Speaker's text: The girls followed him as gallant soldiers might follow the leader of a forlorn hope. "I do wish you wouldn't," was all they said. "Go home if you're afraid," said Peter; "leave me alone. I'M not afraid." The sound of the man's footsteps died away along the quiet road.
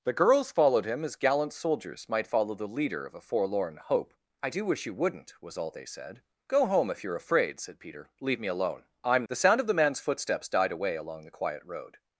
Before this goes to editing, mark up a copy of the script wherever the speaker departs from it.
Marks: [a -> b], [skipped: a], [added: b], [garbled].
The girls followed him as gallant soldiers might follow the leader of a forlorn hope. "I do wish you wouldn't," was all they said. "Go home if you're afraid," said Peter; "leave me alone. I'M [skipped: not afraid."] The sound of the man's footsteps died away along the quiet road.